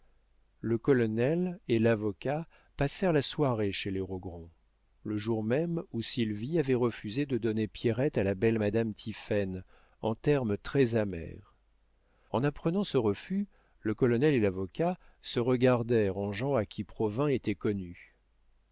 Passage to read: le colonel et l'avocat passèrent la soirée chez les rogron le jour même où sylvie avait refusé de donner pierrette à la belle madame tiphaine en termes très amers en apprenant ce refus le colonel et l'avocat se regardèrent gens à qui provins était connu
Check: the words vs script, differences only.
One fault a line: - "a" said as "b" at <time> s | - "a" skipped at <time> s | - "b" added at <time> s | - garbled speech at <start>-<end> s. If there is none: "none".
- "en" added at 16.2 s